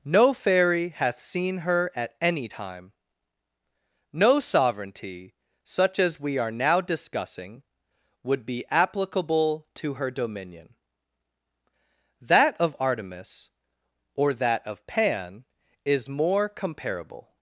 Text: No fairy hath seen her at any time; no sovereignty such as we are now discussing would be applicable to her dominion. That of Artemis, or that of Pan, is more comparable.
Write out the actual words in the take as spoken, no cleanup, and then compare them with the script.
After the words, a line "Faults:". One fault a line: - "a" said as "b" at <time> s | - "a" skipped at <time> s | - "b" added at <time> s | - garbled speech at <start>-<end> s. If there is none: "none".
No fairy hath seen her at any time; no sovereignty such as we are now discussing would be applicable to her dominion. That of Artemis, or that of Pan, is more comparable.
Faults:
none